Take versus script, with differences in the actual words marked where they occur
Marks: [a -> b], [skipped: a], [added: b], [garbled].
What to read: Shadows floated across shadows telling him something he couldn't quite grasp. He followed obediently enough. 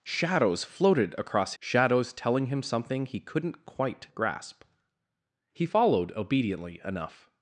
Shadows floated across shadows telling him something he couldn't quite grasp. He followed obediently enough.